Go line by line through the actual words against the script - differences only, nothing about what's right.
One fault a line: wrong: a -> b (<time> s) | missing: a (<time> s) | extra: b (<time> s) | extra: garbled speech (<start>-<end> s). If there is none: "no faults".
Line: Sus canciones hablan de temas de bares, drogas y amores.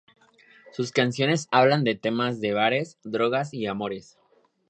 no faults